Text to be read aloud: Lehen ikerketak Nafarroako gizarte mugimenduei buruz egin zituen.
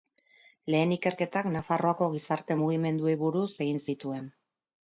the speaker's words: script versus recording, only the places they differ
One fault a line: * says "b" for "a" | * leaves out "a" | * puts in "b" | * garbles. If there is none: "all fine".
all fine